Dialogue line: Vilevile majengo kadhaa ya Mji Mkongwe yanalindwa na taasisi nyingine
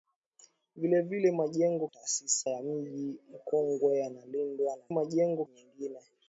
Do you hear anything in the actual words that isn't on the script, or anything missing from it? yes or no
yes